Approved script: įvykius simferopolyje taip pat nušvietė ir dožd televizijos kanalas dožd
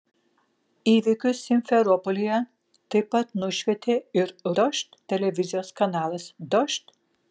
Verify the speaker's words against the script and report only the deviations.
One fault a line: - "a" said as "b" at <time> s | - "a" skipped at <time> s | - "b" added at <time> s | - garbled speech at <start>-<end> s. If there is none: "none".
none